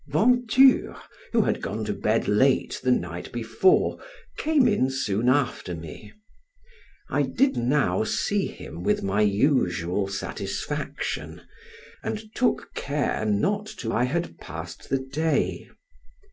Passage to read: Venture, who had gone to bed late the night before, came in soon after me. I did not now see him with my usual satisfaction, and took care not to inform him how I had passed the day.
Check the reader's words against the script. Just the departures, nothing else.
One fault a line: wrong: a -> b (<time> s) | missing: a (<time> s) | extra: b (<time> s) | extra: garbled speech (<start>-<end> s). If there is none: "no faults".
missing: not (7.6 s)
missing: inform him how (13.9 s)